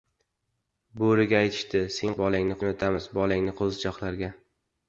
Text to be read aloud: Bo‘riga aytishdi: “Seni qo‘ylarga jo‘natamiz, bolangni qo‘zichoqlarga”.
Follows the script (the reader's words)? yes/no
no